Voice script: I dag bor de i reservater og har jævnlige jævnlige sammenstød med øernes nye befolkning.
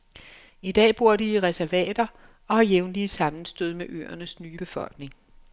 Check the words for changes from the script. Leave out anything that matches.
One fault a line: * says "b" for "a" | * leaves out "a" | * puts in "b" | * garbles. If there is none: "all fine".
* leaves out "jævnlige"